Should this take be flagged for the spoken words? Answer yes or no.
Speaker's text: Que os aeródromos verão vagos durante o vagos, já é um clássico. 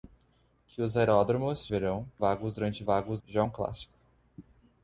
no